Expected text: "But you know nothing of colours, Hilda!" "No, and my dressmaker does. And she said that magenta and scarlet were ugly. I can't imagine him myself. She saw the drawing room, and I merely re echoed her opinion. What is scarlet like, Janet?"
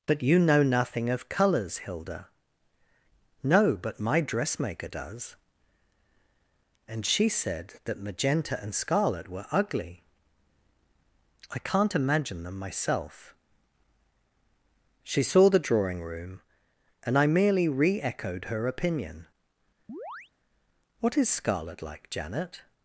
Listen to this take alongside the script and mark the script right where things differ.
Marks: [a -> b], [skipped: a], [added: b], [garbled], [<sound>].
"But you know nothing of colours, Hilda!" "No, [and -> but] my dressmaker does. And she said that magenta and scarlet were ugly. I can't imagine [him -> them] myself. She saw the drawing room, and I merely re echoed her opinion. [chirp] What is scarlet like, Janet?"